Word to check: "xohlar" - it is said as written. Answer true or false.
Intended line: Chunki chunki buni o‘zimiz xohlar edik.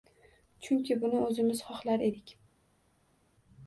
true